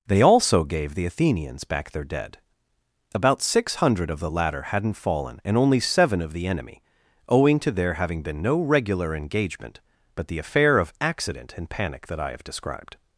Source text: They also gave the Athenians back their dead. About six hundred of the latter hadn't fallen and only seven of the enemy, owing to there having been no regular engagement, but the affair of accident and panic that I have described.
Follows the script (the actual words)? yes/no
yes